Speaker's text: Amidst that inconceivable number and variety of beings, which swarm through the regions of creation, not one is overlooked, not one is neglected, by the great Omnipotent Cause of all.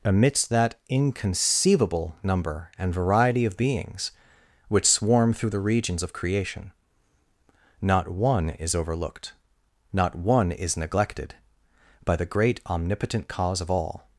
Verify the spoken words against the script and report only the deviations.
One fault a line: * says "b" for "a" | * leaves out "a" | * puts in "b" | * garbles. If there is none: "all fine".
all fine